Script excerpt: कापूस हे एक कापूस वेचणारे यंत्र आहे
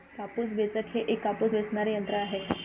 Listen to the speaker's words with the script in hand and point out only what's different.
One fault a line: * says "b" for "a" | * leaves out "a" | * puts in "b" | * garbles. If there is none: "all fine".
* puts in "वेचक"